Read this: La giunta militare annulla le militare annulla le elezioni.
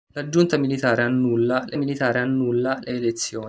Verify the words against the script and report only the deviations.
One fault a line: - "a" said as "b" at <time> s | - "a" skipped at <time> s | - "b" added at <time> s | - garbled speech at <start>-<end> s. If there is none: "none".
none